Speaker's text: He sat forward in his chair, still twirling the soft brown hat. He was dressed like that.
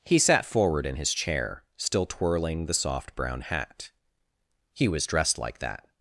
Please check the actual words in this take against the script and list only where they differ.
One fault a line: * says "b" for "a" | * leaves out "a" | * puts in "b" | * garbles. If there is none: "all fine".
all fine